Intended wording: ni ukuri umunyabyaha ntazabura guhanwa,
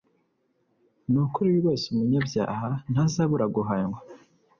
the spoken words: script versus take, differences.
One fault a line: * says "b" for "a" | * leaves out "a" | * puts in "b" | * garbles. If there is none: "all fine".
* puts in "rwose"